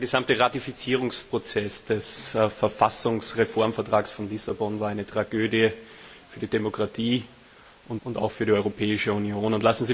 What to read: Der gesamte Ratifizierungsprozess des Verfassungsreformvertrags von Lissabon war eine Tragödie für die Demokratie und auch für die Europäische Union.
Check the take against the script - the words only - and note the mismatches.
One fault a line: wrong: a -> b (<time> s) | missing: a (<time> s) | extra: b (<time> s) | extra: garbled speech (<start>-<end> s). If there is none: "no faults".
extra: und (8.0 s)